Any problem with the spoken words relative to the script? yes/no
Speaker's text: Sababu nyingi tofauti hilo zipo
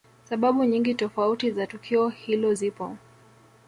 yes